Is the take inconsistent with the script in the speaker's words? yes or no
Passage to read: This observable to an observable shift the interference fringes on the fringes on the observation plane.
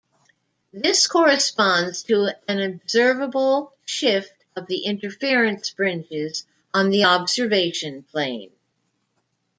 yes